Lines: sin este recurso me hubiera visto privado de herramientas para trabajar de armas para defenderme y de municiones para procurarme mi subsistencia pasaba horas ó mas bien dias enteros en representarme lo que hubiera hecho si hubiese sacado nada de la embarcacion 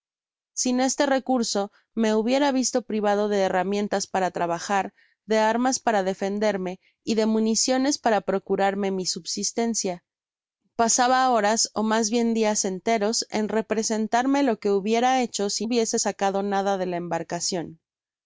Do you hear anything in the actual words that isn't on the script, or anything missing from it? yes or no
no